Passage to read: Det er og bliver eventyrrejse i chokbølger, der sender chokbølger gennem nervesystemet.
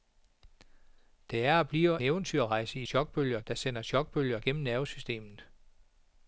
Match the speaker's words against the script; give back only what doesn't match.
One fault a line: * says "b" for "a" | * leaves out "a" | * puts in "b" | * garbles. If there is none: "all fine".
all fine